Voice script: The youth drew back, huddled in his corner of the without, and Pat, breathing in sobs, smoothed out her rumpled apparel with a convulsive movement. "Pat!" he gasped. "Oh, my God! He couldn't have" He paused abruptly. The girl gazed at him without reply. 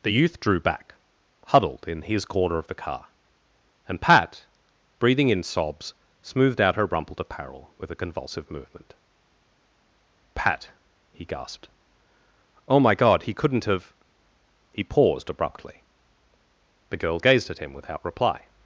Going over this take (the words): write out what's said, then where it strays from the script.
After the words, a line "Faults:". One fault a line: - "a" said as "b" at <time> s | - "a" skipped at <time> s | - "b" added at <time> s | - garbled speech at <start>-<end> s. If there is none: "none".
The youth drew back, huddled in his corner of the car, and Pat, breathing in sobs, smoothed out her rumpled apparel with a convulsive movement. "Pat!" he gasped. "Oh, my God! He couldn't have" He paused abruptly. The girl gazed at him without reply.
Faults:
- "without" said as "car" at 2.8 s